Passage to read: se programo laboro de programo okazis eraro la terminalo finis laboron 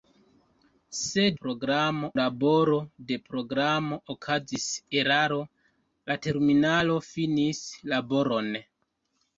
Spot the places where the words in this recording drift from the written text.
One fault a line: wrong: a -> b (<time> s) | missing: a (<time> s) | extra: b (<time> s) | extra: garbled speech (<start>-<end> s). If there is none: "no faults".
no faults